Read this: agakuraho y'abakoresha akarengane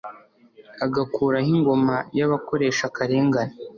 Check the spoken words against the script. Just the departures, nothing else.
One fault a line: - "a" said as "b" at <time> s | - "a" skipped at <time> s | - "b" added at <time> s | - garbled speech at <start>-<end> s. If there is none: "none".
- "ingoma" added at 1.6 s